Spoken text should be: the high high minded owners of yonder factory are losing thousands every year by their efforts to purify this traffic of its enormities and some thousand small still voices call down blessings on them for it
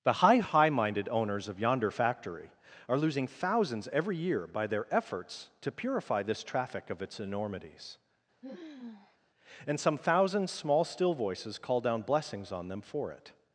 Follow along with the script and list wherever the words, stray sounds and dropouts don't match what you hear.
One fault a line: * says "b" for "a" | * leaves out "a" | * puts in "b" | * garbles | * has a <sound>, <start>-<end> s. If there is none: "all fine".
* has a sigh, 8.4-9.2 s